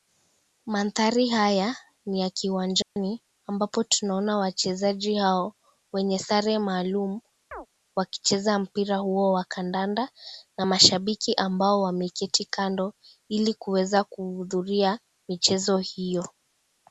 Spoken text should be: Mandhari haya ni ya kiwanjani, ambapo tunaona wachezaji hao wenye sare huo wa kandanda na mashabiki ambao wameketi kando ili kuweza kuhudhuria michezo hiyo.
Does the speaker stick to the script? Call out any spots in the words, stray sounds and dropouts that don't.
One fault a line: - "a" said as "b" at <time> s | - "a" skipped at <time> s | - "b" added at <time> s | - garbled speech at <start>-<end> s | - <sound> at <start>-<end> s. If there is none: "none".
- dropout at 2.8-3.0 s
- "maalum wakicheza mpira" added at 6.6 s
- chirp at 7.5-7.7 s